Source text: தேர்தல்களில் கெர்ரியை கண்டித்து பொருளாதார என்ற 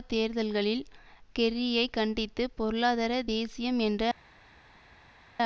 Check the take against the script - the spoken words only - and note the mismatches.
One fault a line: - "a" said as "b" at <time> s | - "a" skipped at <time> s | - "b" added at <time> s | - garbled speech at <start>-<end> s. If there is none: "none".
- "தேசியம்" added at 3.3 s